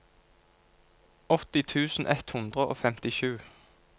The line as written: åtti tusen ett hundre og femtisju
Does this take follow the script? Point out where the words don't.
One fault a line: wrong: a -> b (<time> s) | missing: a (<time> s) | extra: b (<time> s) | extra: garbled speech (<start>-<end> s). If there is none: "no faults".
no faults